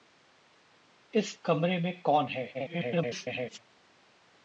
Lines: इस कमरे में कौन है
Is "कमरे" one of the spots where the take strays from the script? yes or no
no